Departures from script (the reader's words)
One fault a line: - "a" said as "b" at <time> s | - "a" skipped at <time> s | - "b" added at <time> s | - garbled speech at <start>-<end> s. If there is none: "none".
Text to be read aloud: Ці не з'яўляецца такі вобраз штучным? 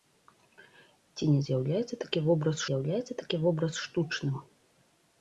- "з'яўляецца такі вобраз" added at 2.7 s